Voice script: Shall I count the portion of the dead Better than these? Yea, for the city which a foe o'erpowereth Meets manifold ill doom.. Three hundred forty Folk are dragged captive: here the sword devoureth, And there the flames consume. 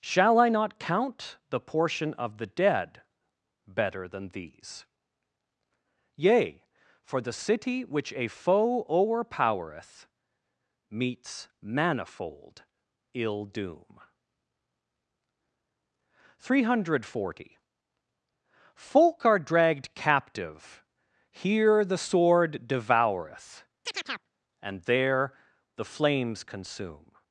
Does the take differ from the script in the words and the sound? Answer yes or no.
yes